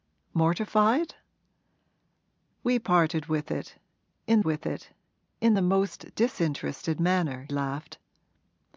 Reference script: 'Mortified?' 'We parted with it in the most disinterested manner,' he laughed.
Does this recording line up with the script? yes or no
no